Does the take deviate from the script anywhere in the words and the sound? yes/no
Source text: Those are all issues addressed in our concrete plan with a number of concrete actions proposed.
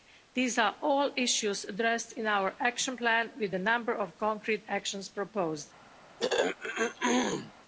yes